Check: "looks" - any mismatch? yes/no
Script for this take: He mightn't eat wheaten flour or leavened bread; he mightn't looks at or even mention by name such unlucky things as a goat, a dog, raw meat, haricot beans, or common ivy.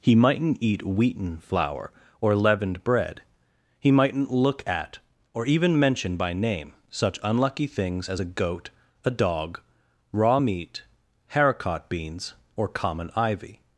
yes